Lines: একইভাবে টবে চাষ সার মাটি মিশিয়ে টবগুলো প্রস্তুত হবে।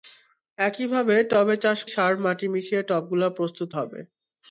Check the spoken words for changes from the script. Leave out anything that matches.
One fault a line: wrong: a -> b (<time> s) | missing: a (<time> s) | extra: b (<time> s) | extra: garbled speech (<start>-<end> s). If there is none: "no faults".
no faults